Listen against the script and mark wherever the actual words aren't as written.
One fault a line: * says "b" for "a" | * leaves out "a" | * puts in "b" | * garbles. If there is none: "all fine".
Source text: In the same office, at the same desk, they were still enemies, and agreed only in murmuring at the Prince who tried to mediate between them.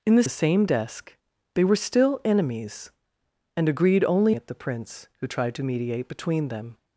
* leaves out "same office at"
* leaves out "in murmuring"